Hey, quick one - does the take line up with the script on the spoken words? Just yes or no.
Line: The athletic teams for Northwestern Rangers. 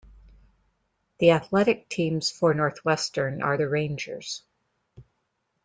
no